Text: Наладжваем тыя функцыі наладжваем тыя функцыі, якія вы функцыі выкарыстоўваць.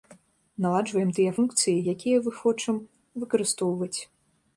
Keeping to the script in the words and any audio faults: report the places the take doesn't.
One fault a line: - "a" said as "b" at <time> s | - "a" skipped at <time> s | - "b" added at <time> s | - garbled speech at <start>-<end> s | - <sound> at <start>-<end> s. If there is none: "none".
- "наладжваем тыя функцыі" skipped at 1.7 s
- "функцыі" said as "хочам" at 2.4 s